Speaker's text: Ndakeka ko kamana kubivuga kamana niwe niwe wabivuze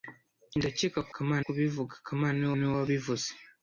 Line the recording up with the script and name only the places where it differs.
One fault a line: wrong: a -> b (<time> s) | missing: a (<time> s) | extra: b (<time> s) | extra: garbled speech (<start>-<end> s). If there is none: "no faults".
no faults